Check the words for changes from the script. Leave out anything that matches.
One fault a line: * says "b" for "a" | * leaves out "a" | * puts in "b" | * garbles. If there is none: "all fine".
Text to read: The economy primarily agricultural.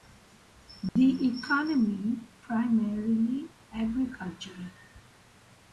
all fine